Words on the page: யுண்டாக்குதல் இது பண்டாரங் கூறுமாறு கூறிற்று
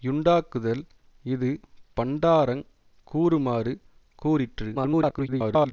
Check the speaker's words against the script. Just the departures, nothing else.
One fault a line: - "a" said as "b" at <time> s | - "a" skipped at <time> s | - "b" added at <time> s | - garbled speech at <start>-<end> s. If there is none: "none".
- garbled speech at 4.7-5.7 s